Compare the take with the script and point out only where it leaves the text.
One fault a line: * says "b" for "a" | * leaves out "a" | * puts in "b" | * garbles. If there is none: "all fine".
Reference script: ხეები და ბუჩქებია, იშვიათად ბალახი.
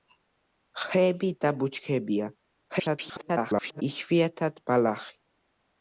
* garbles